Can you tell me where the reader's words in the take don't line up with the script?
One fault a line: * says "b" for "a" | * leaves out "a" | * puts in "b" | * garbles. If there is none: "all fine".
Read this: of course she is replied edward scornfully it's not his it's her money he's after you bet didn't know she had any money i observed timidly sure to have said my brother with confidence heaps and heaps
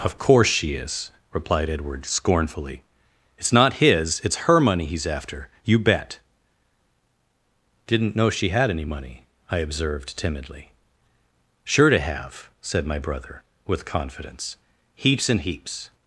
all fine